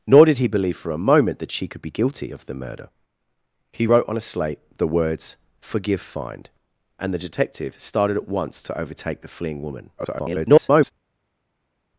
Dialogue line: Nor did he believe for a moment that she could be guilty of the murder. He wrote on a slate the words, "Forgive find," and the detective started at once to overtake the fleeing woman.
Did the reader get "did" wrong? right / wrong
right